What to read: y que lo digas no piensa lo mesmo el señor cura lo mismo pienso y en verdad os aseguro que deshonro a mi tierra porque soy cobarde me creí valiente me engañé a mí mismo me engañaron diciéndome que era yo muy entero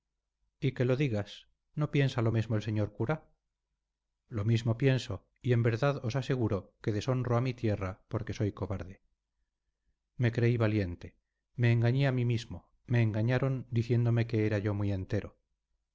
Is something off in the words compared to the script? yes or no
no